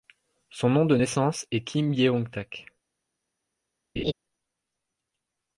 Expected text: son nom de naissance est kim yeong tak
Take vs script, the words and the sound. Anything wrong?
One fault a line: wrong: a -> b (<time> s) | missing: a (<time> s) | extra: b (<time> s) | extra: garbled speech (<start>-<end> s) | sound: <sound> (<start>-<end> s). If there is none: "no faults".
sound: laugh (4.0-4.1 s)